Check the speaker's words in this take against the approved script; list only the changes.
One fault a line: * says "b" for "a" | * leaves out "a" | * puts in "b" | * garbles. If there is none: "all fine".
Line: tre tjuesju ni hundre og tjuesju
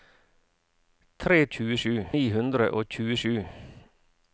all fine